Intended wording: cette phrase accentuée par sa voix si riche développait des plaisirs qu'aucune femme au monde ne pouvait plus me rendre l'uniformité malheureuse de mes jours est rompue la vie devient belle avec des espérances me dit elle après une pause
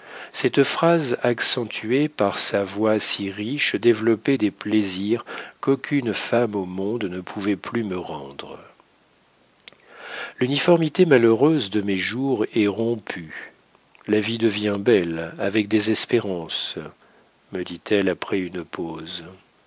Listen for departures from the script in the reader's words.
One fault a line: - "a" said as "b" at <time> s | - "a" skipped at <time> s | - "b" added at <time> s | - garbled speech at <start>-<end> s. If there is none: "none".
none